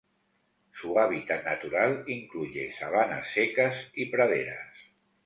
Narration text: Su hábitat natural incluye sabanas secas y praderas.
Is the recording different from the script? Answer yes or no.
no